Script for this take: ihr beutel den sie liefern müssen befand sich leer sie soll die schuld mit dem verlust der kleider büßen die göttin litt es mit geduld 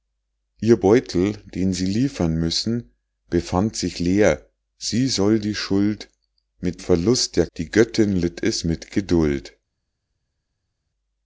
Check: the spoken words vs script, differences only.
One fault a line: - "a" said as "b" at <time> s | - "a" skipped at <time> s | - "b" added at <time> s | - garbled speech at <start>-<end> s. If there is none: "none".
- "dem" skipped at 6.8 s
- "kleider büßen" skipped at 7.5 s